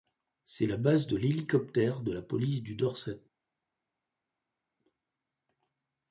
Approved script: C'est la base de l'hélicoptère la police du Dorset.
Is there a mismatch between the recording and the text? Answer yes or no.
yes